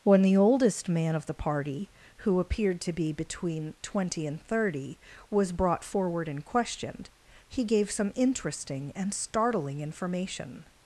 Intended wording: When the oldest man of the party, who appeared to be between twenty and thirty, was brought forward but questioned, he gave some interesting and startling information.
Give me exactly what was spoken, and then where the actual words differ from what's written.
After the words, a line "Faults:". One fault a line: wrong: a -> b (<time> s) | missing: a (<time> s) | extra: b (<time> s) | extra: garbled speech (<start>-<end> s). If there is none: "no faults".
When the oldest man of the party, who appeared to be between twenty and thirty, was brought forward and questioned, he gave some interesting and startling information.
Faults:
wrong: but -> and (6.3 s)